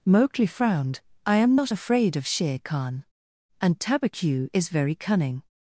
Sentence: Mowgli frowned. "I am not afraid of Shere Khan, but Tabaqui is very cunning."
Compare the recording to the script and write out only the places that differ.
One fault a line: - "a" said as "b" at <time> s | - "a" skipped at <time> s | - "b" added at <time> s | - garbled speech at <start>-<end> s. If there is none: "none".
- "but" said as "and" at 3.6 s